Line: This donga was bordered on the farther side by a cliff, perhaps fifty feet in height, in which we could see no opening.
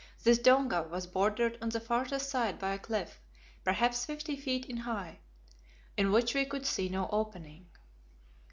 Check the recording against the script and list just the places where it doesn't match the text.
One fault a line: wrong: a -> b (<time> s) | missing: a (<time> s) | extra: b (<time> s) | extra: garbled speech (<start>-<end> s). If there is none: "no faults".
no faults